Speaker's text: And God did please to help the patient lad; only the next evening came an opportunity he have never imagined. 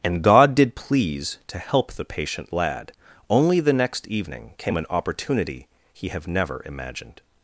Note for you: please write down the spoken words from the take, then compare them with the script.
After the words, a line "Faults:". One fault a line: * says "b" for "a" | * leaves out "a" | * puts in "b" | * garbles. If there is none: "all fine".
And God did please to help the patient lad; only the next evening came an opportunity he have never imagined.
Faults:
all fine